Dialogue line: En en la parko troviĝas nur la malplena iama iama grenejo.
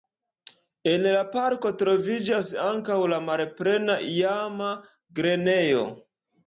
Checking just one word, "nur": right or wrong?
wrong